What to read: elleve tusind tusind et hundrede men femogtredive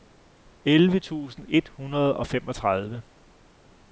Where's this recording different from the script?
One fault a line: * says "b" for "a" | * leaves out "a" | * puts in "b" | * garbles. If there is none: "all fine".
* leaves out "tusind"
* says "og" for "men"